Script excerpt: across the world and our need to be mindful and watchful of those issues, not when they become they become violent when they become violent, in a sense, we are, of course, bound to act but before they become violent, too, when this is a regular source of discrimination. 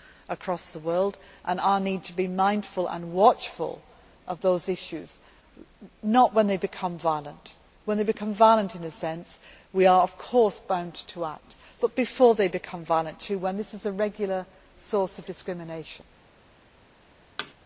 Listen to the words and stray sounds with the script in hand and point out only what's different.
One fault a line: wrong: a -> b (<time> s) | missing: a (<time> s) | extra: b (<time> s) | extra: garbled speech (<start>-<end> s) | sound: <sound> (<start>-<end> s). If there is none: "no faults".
missing: they become (7.0 s)
sound: thud (17.4-17.5 s)